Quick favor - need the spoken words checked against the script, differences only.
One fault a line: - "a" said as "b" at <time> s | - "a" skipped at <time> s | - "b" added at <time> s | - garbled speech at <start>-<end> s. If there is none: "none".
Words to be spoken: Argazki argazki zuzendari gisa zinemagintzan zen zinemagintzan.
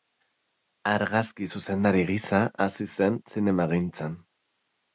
- "argazki" skipped at 1.5 s
- "zinemagintzan" said as "hasi" at 2.7 s